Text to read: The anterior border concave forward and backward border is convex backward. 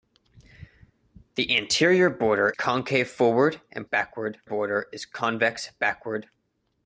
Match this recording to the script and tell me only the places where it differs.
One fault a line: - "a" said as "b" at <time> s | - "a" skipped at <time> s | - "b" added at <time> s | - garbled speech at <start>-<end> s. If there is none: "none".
none